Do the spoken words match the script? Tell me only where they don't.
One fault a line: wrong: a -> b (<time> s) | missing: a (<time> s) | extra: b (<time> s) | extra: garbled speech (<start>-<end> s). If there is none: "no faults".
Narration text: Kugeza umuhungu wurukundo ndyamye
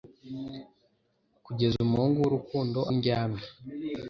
no faults